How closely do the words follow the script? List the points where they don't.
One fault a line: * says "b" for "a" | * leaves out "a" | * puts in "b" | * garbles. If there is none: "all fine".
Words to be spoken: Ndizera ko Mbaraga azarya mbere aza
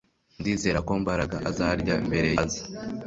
all fine